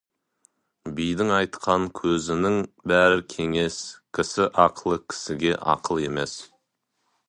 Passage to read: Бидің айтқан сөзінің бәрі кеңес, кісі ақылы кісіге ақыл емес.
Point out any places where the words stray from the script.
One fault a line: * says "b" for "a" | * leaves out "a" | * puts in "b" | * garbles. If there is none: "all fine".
all fine